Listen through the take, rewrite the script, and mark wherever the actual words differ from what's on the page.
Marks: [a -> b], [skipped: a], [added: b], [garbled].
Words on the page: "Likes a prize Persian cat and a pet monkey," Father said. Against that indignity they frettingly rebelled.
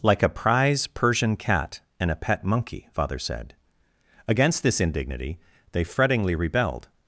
["Likes -> Like] a prize Persian cat and a pet monkey," Father said. Against [that -> this] indignity they frettingly rebelled.